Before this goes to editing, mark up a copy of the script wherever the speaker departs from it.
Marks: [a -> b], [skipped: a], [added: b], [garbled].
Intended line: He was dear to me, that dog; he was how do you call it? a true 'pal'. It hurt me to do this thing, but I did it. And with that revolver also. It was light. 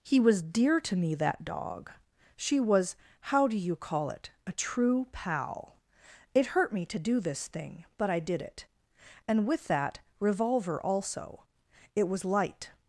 He was dear to me, that dog; [he -> she] was how do you call it? a true 'pal'. It hurt me to do this thing, but I did it. And with that revolver also. It was light.